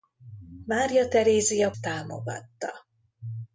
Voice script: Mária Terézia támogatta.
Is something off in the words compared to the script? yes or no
no